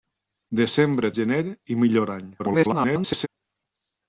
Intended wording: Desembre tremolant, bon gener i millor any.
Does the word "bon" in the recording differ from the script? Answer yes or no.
yes